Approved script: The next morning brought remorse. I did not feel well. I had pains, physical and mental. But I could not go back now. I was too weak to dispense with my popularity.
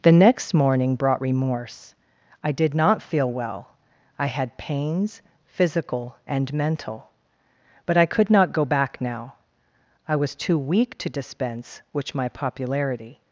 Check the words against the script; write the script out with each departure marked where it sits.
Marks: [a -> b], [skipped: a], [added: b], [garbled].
The next morning brought remorse. I did not feel well. I had pains, physical and mental. But I could not go back now. I was too weak to dispense [with -> which] my popularity.